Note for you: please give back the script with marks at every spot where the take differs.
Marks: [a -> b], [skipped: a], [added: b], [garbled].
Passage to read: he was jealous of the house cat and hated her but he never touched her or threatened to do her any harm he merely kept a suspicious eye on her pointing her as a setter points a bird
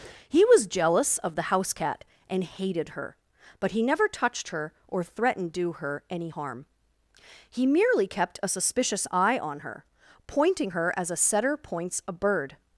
he was jealous of the house cat and hated her but he never touched her or threatened [skipped: to] do her any harm he merely kept a suspicious eye on her pointing her as a setter points a bird